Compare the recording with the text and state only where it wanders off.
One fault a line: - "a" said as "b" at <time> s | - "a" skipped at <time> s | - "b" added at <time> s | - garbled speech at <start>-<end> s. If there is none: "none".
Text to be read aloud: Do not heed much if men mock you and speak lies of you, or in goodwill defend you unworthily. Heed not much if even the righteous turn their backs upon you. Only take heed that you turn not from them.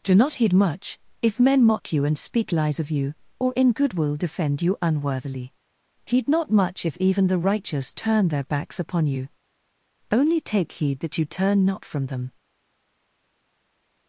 none